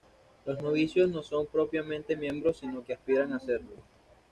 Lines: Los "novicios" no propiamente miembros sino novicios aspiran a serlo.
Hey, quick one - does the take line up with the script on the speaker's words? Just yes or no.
no